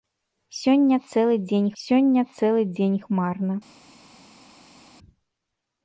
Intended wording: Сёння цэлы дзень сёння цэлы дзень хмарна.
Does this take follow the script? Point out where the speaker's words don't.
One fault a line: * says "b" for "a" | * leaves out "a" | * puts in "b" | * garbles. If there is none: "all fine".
all fine